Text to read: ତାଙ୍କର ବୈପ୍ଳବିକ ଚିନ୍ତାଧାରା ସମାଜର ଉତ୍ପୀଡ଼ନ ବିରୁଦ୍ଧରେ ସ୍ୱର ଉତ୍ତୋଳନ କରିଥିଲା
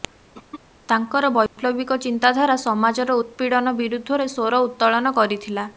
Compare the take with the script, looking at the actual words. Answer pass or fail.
pass